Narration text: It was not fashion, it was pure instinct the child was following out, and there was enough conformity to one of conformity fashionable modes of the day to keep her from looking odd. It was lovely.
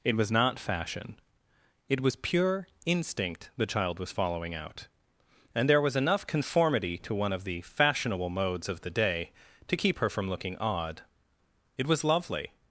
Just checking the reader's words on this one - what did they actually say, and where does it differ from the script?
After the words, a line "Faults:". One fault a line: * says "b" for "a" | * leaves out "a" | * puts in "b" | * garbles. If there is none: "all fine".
It was not fashion, it was pure instinct the child was following out, and there was enough conformity to one of the fashionable modes of the day to keep her from looking odd. It was lovely.
Faults:
* says "the" for "conformity"